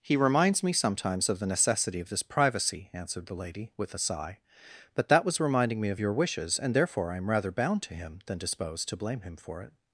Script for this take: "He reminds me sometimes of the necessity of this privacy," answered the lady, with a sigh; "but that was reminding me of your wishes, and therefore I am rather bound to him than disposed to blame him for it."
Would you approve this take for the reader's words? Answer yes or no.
yes